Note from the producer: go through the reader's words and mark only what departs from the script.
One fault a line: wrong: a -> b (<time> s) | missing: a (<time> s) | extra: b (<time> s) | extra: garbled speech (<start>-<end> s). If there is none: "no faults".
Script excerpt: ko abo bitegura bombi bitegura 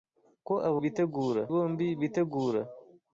no faults